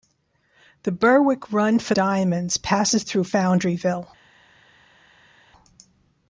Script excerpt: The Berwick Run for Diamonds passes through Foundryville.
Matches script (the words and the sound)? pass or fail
pass